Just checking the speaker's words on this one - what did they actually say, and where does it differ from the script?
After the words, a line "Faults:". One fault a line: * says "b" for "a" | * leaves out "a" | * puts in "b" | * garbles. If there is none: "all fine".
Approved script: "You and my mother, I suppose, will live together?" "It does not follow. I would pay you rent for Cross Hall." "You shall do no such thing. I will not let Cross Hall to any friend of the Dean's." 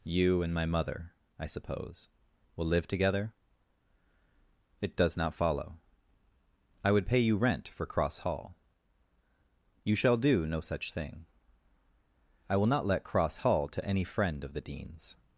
"You and my mother, I suppose, will live together?" "It does not follow. I would pay you rent for Cross Hall." "You shall do no such thing. I will not let Cross Hall to any friend of the Dean's."
Faults:
all fine